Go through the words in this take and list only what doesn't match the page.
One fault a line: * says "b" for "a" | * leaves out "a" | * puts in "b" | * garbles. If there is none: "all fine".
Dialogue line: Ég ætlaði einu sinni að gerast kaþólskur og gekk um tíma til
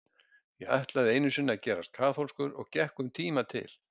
all fine